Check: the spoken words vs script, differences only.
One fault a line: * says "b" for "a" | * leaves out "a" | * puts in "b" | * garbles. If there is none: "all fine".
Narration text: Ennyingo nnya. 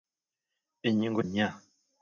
all fine